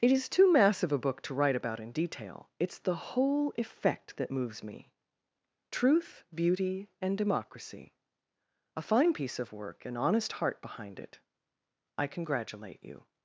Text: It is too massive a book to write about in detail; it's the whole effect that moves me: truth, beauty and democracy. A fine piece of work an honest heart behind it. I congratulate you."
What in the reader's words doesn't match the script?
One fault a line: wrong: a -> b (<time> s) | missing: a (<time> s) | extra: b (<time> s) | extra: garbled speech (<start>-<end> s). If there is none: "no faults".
no faults